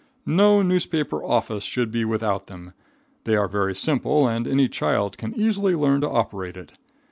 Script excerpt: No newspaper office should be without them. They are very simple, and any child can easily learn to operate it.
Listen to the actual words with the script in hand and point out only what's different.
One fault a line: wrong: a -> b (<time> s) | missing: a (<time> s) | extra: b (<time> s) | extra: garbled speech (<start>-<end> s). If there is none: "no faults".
no faults